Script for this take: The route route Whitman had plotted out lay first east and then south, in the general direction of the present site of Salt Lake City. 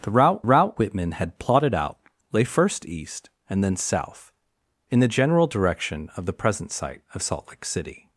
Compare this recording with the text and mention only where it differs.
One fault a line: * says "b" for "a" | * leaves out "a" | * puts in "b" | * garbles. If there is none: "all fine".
all fine